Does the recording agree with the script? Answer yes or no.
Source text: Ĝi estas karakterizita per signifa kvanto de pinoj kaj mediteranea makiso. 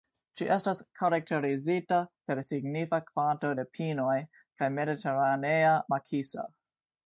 yes